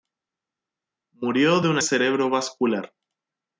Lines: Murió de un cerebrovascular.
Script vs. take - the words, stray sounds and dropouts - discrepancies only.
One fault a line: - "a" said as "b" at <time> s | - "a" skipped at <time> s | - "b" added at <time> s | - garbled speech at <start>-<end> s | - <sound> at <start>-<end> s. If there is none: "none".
none